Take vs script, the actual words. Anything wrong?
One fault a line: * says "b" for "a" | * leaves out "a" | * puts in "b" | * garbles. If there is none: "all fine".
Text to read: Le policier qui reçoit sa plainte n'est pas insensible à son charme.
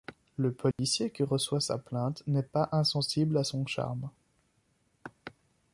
all fine